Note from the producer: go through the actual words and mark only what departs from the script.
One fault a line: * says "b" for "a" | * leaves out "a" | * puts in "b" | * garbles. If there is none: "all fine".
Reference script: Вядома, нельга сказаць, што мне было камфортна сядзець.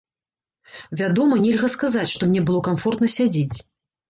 all fine